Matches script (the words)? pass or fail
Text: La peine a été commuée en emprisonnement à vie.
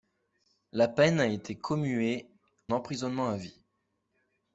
fail